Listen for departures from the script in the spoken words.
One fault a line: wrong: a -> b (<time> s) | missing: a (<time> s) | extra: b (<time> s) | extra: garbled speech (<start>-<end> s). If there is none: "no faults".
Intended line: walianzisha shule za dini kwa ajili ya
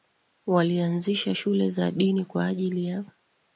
no faults